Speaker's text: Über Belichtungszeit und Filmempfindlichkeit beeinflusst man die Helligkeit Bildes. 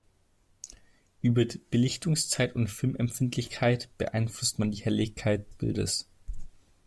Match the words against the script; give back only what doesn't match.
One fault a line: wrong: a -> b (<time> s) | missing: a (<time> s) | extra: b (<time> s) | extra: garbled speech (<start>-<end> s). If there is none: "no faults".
no faults